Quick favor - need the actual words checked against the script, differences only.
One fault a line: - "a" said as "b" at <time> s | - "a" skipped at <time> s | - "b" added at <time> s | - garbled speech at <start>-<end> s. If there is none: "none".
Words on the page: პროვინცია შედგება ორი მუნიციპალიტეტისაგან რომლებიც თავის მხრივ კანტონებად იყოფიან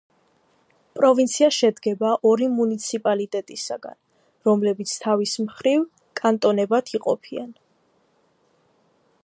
none